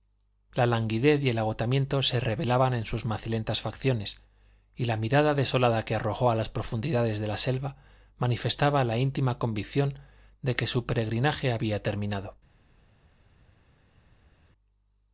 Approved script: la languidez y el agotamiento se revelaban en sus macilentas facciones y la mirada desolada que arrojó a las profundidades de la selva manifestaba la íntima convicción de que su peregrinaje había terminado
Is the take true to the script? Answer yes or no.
yes